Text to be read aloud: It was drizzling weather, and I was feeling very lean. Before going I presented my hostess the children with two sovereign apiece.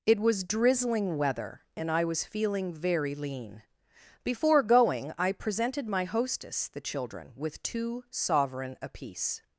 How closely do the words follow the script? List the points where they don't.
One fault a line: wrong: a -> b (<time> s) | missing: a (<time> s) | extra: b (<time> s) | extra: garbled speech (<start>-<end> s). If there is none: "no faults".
no faults